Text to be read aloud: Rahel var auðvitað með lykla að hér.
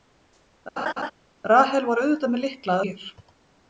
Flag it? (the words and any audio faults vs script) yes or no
yes